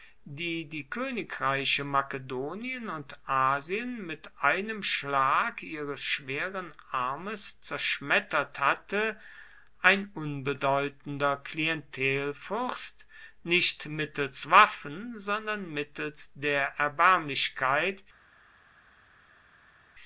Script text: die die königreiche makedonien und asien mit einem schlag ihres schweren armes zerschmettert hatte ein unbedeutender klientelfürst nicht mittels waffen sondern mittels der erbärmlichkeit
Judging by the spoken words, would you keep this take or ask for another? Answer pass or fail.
pass